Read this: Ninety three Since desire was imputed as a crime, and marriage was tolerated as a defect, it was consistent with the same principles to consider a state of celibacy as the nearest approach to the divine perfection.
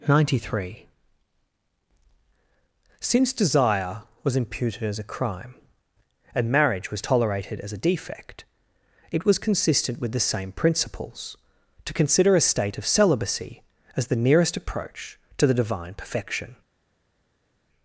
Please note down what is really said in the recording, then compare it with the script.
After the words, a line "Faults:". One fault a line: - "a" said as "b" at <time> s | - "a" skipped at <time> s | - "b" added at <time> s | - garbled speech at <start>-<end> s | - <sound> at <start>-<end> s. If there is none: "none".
Ninety three Since desire was imputed as a crime, and marriage was tolerated as a defect, it was consistent with the same principles to consider a state of celibacy as the nearest approach to the divine perfection.
Faults:
none